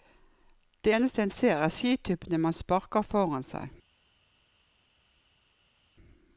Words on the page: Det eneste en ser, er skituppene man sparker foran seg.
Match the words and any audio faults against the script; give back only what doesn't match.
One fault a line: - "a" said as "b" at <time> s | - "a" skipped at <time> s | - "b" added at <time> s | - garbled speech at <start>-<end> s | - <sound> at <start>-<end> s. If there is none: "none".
none